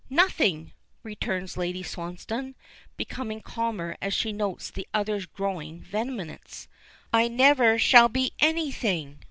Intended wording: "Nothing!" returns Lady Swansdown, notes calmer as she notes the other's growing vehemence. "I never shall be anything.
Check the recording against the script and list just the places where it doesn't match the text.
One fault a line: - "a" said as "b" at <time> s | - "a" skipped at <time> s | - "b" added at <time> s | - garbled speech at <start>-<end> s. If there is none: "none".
- "notes" said as "becoming" at 3.0 s